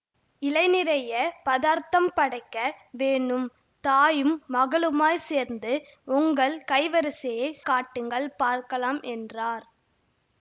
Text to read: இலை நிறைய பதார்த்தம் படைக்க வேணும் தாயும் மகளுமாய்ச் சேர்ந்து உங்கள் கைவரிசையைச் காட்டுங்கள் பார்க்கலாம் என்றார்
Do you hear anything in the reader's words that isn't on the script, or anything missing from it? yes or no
no